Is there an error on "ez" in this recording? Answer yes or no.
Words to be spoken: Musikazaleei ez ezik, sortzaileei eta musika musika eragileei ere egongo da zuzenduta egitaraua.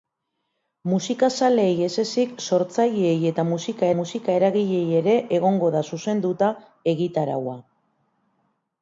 no